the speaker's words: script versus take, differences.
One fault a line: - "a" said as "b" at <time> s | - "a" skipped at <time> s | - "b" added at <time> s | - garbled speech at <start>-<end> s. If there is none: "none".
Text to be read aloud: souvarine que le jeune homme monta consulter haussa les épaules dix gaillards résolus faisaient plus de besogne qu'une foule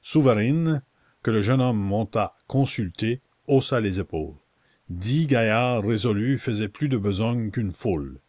none